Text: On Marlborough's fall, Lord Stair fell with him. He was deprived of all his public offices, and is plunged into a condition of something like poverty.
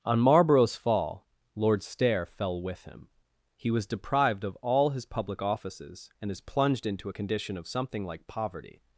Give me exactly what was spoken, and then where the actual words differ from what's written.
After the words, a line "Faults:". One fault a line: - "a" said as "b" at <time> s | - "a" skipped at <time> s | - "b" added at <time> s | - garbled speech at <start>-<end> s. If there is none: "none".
On Marlborough's fall, Lord Stair fell with him. He was deprived of all his public offices, and is plunged into a condition of something like poverty.
Faults:
none